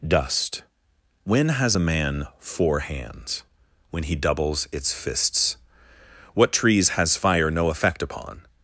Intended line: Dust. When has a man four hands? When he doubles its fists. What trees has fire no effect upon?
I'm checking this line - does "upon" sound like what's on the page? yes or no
yes